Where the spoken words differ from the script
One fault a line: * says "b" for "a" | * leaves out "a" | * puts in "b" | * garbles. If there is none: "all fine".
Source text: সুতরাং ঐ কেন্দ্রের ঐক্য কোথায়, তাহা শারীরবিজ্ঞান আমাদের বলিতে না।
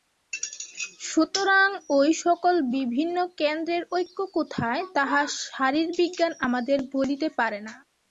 * puts in "সকল বিভিন্ন"
* puts in "পারে"